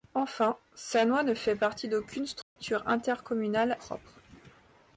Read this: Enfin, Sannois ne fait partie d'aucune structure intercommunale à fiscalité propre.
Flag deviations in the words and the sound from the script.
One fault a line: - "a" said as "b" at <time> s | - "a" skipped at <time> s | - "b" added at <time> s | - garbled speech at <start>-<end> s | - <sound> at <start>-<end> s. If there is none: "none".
- dropout at 2.4-2.6 s
- "à fiscalité" skipped at 3.8 s